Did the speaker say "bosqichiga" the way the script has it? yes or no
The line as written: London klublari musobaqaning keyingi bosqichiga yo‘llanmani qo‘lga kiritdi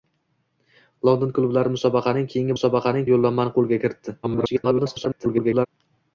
no